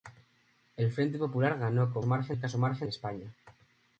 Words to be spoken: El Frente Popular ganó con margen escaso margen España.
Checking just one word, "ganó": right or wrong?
right